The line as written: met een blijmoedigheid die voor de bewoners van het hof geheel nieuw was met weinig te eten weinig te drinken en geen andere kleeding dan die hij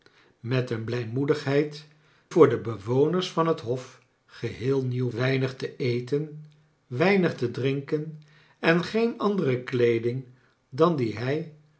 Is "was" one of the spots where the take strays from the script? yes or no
yes